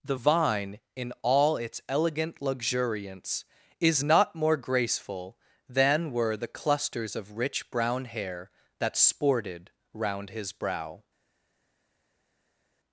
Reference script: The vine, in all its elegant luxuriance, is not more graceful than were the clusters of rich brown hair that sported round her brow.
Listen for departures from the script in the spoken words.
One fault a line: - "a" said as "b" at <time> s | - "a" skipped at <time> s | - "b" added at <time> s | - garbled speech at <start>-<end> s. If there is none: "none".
- "her" said as "his" at 10.3 s